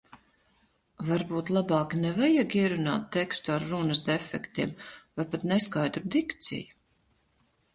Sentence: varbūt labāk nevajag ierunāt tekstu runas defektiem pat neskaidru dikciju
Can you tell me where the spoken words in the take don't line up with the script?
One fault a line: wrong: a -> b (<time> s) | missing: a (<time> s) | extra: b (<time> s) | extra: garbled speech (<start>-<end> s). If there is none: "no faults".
extra: ar (3.6 s)
extra: vai (4.9 s)